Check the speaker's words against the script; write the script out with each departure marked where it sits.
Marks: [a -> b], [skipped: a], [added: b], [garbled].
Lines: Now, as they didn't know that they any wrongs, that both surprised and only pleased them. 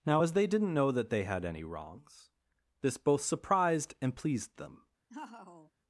Now, as they didn't know that they [added: had] any wrongs, [that -> this] both surprised and [skipped: only] pleased them.